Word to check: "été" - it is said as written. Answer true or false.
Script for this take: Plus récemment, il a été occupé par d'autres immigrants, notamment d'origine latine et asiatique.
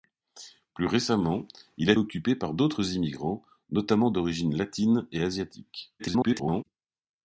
false